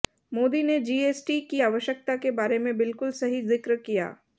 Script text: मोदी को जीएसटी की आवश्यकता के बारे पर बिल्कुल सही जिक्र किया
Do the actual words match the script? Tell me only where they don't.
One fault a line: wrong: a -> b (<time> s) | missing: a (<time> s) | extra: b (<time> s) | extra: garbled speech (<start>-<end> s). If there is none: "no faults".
wrong: को -> ने (0.6 s)
wrong: पर -> में (2.6 s)